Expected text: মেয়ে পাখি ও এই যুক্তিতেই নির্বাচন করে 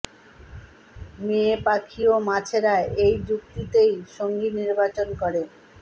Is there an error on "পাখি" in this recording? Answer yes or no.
no